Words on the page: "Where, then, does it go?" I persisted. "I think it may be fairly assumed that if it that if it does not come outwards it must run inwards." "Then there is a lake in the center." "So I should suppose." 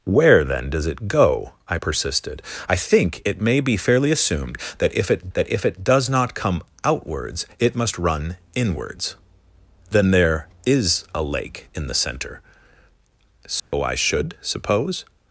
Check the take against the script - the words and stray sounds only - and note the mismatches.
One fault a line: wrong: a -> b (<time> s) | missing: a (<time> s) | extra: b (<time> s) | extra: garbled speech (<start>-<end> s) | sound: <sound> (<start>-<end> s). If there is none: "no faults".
sound: dropout (13.6-13.7 s)